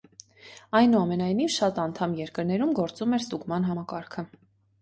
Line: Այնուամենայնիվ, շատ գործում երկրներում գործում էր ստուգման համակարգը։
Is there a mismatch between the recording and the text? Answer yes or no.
yes